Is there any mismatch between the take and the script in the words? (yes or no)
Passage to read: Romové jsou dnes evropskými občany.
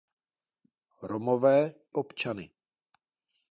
yes